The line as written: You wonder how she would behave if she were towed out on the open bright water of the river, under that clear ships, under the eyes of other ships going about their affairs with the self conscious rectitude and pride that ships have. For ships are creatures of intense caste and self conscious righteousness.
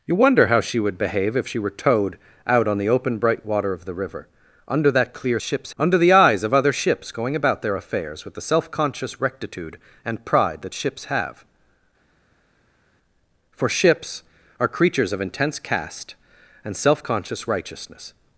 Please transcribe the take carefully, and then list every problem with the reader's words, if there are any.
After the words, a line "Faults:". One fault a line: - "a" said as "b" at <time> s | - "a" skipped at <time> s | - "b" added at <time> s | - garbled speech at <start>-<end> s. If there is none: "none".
You wonder how she would behave if she were towed out on the open bright water of the river, under that clear ships, under the eyes of other ships going about their affairs with the self conscious rectitude and pride that ships have. For ships are creatures of intense caste and self conscious righteousness.
Faults:
none